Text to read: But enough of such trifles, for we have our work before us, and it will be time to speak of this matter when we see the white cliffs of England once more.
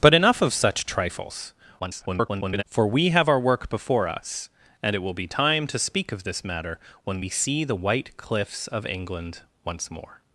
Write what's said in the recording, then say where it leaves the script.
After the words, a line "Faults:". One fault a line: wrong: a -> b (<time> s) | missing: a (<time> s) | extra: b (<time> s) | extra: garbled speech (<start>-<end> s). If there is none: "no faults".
But enough of such trifles, [garbled] for we have our work before us, and it will be time to speak of this matter when we see the white cliffs of England once more.
Faults:
extra: garbled speech (1.8-2.6 s)